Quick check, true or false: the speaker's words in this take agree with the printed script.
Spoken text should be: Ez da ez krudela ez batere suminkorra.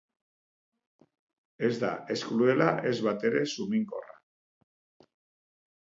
true